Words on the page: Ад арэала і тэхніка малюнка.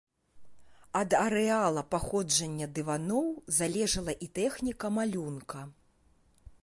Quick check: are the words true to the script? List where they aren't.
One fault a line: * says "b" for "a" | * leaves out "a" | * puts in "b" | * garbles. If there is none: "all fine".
* puts in "паходжання дываноў залежала"